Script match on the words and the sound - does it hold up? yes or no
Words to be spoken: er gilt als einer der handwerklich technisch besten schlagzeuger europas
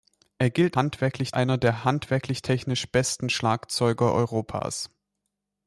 no